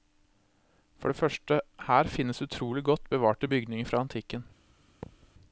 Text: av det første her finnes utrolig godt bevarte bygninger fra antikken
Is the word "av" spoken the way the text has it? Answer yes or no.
no